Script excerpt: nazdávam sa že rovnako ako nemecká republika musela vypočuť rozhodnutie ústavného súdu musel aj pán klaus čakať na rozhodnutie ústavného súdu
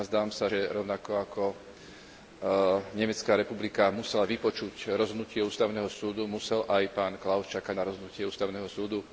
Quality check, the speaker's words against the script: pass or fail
pass